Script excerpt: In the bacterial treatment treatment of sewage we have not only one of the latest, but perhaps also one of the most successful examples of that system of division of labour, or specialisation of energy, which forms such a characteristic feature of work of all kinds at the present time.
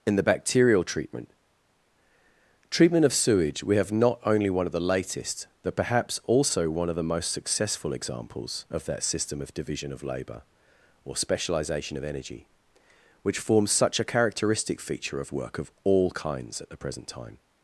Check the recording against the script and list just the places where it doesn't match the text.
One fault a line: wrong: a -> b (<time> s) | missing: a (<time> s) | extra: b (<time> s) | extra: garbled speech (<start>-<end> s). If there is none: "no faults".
no faults